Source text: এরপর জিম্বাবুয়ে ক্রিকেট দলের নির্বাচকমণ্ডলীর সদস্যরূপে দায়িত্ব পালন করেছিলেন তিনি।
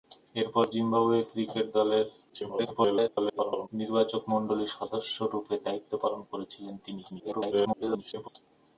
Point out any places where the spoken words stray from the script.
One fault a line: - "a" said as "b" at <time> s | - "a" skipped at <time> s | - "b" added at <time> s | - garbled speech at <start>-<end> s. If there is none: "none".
- garbled speech at 2.3-3.7 s
- garbled speech at 7.1-8.3 s